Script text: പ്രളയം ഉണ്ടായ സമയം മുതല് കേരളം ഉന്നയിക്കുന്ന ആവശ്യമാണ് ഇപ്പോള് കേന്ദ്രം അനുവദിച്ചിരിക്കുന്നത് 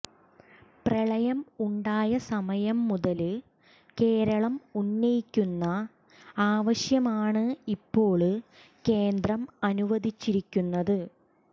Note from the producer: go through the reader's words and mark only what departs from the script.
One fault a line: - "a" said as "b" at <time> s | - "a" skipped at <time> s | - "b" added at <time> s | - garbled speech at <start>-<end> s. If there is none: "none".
none